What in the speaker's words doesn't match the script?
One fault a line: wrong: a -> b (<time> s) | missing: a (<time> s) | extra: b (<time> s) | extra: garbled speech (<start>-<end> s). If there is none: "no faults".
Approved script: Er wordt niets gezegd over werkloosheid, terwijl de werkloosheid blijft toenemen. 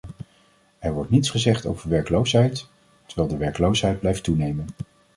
no faults